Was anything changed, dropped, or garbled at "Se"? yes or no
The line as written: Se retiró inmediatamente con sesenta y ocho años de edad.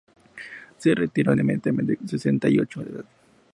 no